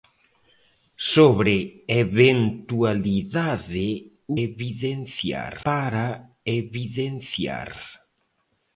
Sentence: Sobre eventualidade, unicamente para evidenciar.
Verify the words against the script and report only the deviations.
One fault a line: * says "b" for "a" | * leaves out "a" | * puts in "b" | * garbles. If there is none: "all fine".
* says "evidenciar" for "unicamente"